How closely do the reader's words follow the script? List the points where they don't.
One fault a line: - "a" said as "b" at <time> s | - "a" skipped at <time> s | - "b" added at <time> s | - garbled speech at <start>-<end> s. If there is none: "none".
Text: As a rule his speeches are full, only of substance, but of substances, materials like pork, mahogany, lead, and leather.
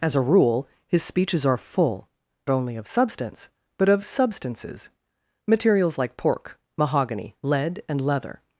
none